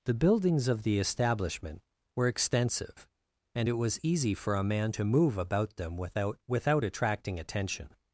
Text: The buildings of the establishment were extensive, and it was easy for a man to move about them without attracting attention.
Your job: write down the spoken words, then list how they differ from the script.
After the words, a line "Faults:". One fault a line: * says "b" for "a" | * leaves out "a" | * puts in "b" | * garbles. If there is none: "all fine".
The buildings of the establishment were extensive, and it was easy for a man to move about them without without attracting attention.
Faults:
* puts in "without"